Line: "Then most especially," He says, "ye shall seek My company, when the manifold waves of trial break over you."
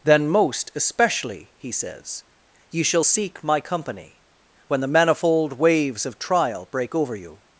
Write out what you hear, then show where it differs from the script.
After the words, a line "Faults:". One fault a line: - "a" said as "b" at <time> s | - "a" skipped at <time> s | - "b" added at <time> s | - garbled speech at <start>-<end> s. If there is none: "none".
"Then most especially," He says, "ye shall seek My company, when the manifold waves of trial break over you."
Faults:
none